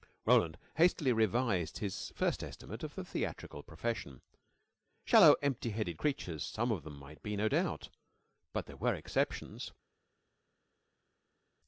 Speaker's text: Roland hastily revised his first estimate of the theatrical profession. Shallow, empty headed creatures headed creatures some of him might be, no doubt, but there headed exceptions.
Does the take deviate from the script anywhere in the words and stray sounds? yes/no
yes